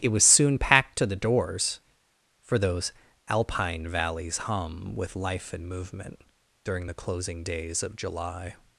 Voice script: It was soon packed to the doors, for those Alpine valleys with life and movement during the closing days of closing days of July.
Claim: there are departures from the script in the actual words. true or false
true